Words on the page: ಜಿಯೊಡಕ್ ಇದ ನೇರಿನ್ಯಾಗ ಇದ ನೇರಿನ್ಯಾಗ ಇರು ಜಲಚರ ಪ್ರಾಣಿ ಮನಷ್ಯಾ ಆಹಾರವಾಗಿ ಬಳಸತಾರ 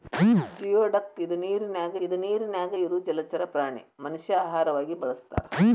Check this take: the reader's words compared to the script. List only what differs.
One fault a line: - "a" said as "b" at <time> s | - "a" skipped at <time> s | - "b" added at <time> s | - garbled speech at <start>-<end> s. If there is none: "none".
none